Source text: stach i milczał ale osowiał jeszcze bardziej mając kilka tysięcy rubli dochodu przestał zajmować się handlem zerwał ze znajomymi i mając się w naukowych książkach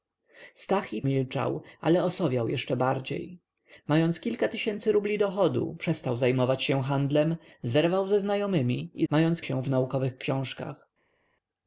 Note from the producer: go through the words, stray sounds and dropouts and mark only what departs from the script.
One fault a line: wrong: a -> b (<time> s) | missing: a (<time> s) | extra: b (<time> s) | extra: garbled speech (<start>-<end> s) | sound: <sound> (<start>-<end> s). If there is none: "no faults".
no faults